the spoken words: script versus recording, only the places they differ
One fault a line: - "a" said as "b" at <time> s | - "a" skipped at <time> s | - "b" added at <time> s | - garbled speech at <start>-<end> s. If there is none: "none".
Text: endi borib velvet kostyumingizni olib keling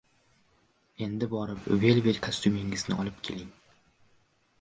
none